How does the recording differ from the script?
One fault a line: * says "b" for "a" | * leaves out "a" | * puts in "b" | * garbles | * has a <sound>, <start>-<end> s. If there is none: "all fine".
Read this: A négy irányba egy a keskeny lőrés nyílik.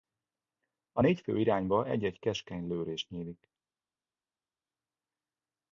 * puts in "fő"
* says "egy" for "a"